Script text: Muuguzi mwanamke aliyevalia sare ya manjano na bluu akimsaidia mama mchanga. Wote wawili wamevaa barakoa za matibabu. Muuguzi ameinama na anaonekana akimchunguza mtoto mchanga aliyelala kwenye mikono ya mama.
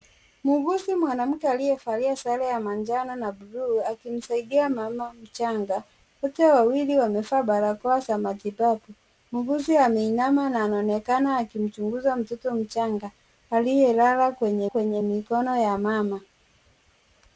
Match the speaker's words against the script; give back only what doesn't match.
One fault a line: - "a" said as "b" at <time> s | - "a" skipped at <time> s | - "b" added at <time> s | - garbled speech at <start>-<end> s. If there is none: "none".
- "kwenye" added at 14.6 s